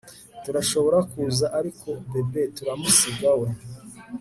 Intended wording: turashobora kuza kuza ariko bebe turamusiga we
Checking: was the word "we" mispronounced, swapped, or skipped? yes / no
no